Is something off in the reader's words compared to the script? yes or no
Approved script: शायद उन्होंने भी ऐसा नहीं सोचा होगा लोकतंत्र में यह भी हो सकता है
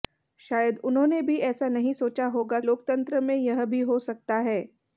no